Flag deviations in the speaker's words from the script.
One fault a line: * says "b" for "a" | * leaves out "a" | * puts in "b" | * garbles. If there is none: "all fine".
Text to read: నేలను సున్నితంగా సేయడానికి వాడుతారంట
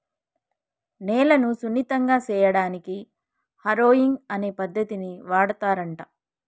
* puts in "హారొయింగ్ అనే పద్దతిని"